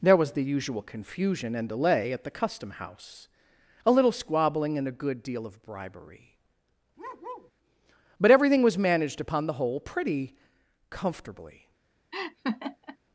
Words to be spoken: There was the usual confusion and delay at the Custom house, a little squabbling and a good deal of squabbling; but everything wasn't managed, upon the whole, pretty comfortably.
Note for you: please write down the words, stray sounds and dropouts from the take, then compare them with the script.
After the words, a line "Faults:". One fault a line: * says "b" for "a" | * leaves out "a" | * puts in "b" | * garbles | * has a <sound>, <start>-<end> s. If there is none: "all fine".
There was the usual confusion and delay at the Custom house, a little squabbling and a good deal of bribery; but everything was managed, upon the whole, pretty comfortably.
Faults:
* says "bribery" for "squabbling"
* has a bark, 7.0-7.5 s
* says "was" for "wasn't"
* has a laugh, 12.1-13.0 s